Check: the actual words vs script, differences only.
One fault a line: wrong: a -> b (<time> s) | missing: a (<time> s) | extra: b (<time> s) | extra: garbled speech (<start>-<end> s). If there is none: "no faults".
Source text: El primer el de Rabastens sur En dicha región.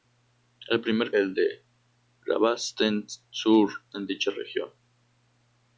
no faults